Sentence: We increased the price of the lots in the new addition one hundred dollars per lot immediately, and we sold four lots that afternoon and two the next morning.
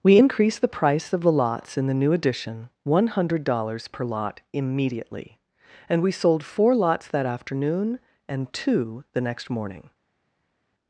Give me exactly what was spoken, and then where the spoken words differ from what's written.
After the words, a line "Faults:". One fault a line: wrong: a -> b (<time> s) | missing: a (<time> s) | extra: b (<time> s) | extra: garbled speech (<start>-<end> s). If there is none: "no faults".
We increased the price of the lots in the new addition one hundred dollars per lot immediately, and we sold four lots that afternoon and two the next morning.
Faults:
no faults